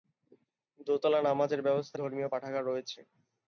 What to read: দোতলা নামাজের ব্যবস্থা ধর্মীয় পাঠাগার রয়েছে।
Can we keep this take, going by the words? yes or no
yes